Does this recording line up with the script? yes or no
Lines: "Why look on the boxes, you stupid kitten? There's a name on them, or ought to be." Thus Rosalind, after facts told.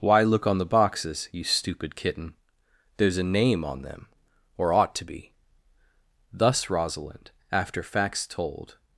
yes